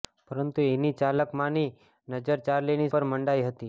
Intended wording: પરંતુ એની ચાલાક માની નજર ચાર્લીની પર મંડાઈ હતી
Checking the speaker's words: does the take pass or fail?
pass